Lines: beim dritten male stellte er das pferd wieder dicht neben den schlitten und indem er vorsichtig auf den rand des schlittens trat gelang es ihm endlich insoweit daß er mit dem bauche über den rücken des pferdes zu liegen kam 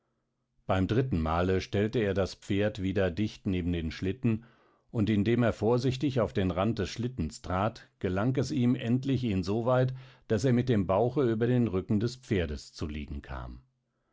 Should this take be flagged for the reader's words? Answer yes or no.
no